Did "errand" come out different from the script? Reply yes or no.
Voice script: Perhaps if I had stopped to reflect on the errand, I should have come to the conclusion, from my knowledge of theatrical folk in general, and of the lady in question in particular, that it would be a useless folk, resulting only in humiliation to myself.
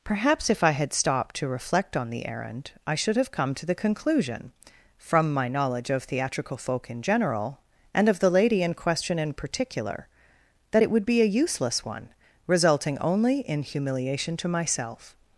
no